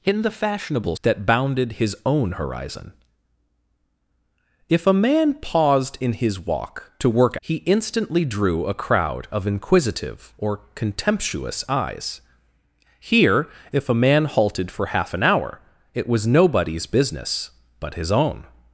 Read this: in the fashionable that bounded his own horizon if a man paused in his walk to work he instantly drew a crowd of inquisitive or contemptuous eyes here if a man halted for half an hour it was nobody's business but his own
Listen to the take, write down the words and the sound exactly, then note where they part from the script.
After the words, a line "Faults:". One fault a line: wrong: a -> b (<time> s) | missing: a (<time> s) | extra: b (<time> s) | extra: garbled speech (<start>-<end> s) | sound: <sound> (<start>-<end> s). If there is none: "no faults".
in the fashionable that bounded his own horizon if a man paused in his walk to work he instantly drew a crowd of inquisitive or contemptuous eyes here if a man halted for half an hour it was nobody's business but his own
Faults:
no faults